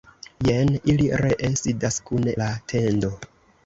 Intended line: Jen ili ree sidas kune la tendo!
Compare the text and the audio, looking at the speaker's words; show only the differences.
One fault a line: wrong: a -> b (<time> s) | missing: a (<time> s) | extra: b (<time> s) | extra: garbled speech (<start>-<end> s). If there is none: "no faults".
no faults